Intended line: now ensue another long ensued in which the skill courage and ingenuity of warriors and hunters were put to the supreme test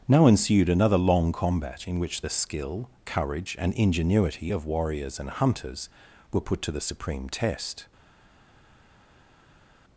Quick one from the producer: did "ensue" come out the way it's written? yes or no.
no